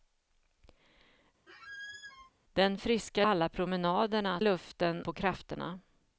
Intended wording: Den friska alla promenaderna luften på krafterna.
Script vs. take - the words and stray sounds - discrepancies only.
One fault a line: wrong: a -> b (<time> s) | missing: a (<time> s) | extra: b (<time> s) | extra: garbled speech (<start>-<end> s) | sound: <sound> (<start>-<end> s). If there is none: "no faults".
sound: squeak (1.5-2.3 s)